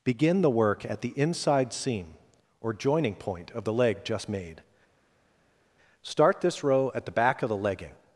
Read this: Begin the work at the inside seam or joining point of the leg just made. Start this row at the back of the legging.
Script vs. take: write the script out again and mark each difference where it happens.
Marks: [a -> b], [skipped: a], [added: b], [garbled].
Begin the work at the inside seam or joining point of the leg just made. Start this row at the back of the legging.